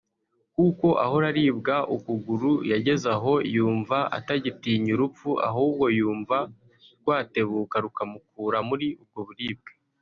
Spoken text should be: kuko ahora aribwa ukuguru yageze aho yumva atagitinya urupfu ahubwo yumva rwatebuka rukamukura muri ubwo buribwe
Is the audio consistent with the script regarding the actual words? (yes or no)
yes